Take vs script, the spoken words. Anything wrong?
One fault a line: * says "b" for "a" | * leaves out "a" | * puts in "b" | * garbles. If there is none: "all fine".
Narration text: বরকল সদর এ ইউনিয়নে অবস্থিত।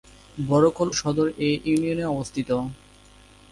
all fine